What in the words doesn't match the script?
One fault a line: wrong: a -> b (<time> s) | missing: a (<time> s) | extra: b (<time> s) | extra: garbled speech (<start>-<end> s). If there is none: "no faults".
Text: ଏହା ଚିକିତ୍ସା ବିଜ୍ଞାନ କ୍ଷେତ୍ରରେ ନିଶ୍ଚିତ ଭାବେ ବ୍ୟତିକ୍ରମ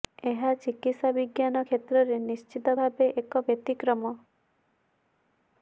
extra: ଏକ (3.2 s)